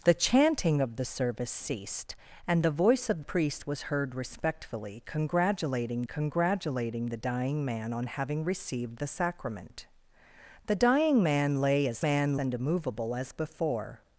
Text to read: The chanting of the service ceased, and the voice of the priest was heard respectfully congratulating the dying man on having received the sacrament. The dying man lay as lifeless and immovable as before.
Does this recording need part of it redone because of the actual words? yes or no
yes